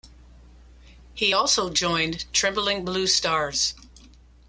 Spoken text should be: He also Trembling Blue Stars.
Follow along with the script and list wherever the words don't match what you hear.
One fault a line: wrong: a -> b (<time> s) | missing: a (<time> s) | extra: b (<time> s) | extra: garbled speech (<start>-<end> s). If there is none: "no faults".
extra: joined (1.7 s)